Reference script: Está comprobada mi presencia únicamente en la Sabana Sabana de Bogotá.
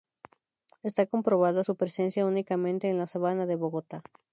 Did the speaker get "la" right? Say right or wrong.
right